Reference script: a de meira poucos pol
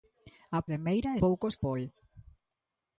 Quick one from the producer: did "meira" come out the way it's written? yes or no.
yes